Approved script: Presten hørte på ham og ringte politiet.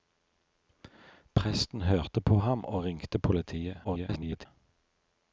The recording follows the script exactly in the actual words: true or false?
false